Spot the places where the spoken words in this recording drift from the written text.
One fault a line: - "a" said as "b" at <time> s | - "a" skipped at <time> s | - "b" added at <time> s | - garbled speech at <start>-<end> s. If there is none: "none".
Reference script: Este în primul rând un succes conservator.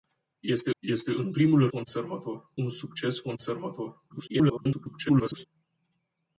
- "este" added at 0.8 s
- "rând" said as "conservator" at 1.7 s
- garbled speech at 4.1-5.5 s